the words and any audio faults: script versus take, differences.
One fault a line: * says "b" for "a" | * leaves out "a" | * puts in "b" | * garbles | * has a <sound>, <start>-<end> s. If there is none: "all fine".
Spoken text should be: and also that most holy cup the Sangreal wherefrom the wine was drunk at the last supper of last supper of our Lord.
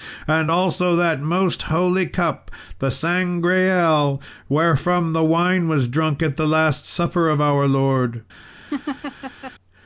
* leaves out "last supper of"
* has a laugh, 8.7-9.5 s